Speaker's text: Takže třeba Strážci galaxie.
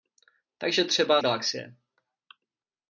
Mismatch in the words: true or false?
true